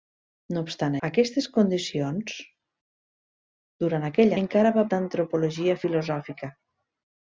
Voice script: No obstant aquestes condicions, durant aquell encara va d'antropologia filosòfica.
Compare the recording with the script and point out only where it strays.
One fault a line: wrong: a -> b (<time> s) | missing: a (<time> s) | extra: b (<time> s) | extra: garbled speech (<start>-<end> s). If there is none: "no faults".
no faults